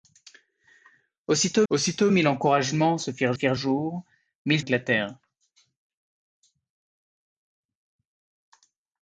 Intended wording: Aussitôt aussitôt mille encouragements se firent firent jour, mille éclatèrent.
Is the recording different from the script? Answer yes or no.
no